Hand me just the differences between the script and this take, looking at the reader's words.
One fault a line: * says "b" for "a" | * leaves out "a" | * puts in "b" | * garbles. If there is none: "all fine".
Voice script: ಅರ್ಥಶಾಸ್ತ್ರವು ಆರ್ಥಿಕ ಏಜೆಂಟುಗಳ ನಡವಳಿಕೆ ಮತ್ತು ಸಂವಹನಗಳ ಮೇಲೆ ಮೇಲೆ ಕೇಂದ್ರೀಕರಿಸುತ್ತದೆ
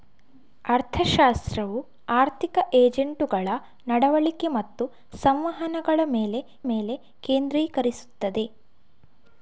all fine